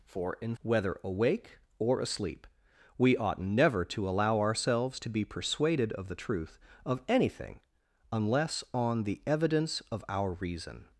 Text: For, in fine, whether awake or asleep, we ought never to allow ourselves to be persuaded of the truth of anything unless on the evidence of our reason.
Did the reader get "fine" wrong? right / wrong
wrong